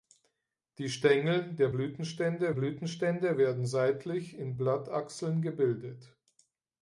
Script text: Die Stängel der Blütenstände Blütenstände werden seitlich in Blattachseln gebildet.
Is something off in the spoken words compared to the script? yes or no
no